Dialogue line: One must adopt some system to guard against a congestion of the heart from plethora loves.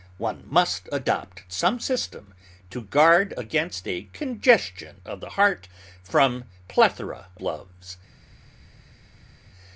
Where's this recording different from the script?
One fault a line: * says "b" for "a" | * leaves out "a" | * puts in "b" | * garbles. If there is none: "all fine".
all fine